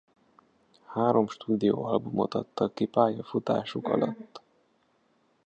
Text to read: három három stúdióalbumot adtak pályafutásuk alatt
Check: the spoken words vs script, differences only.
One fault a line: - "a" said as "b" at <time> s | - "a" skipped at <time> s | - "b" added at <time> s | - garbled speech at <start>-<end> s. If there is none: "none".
- "három" skipped at 1.3 s
- "ki" added at 2.7 s